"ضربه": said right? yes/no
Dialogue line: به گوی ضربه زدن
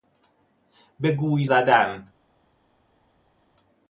no